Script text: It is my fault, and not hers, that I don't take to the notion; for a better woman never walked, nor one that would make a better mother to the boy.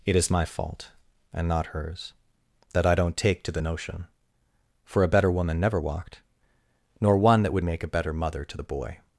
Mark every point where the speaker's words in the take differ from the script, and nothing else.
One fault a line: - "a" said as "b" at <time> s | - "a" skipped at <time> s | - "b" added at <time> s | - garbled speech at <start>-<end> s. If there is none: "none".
none